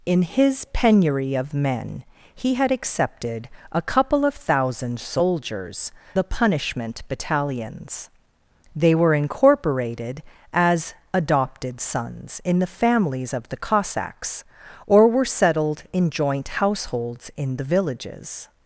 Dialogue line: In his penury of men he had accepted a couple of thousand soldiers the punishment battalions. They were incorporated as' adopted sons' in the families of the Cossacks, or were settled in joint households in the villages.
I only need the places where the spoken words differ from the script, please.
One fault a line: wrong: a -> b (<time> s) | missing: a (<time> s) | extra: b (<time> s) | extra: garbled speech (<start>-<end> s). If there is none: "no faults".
no faults